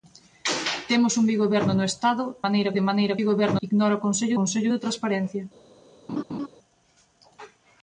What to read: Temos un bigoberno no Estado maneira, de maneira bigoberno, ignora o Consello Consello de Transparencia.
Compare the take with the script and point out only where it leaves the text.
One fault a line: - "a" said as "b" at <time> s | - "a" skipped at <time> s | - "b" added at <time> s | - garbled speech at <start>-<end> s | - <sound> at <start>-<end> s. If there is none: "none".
- laugh at 6.1-6.5 s